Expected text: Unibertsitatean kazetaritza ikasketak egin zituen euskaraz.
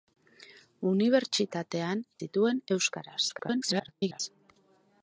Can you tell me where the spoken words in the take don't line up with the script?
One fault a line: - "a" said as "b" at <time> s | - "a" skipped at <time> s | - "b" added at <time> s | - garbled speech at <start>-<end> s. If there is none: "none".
- "kazetaritza ikasketak egin" skipped at 2.0 s
- garbled speech at 3.3-4.2 s